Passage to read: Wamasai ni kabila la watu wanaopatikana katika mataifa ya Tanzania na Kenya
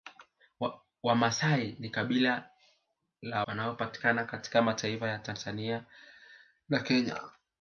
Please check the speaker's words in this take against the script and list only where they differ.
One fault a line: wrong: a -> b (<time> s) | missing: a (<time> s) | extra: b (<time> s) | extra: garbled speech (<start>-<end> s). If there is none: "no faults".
missing: watu (3.5 s)